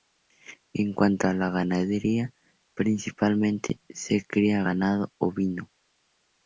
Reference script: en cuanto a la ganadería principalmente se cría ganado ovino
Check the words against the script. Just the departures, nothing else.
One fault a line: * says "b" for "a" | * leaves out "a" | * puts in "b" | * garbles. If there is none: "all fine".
all fine